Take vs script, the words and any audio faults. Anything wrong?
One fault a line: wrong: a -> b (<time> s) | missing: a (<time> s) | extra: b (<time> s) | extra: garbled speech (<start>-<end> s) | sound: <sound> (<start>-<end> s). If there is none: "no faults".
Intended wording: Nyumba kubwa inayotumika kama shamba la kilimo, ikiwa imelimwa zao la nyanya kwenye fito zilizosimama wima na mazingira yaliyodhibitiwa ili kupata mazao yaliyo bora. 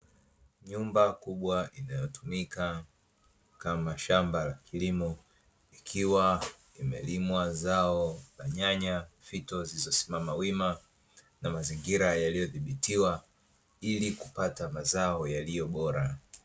missing: kwenye (9.1 s)